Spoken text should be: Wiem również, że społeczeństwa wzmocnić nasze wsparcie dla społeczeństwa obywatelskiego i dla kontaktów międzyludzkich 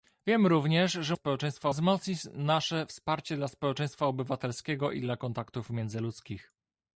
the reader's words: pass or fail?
pass